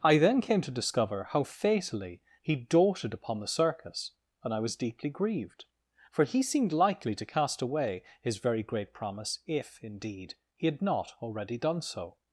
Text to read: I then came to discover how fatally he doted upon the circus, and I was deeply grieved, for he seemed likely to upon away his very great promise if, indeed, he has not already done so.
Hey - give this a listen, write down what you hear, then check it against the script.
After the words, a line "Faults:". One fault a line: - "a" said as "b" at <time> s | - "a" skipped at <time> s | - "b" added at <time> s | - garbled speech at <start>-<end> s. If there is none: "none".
I then came to discover how fatally he doted upon the circus, and I was deeply grieved, for he seemed likely to cast away his very great promise if, indeed, he had not already done so.
Faults:
- "upon" said as "cast" at 7.3 s
- "has" said as "had" at 10.7 s